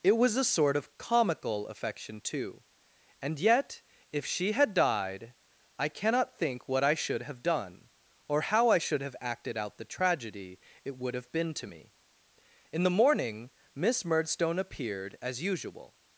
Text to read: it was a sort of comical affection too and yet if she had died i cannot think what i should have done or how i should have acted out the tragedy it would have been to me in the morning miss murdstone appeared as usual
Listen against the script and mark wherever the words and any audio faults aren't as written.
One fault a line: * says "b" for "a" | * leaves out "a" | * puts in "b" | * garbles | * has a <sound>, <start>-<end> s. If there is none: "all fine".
all fine